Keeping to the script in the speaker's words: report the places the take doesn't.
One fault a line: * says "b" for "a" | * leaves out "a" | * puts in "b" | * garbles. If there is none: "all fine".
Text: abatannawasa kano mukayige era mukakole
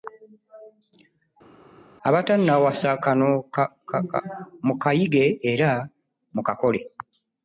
all fine